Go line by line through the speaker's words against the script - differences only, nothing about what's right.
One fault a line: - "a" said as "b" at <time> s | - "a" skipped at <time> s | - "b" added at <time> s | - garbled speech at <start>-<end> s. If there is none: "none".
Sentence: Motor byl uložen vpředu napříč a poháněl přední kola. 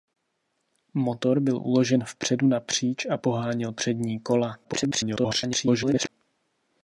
- garbled speech at 4.6-6.1 s